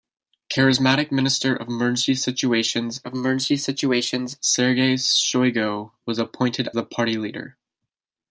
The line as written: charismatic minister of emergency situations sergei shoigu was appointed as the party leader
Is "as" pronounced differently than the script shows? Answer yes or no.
yes